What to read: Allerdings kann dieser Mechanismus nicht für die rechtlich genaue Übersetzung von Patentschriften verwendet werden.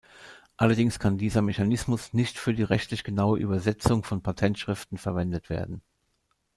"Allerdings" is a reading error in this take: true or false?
false